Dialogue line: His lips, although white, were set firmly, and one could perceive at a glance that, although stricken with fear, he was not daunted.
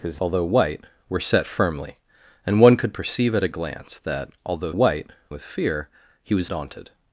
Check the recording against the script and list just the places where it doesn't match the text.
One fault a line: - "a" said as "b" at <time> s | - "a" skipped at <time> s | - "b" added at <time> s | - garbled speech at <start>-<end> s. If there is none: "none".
- "lips" skipped at 0.2 s
- "stricken" said as "white" at 4.7 s
- "not" skipped at 6.5 s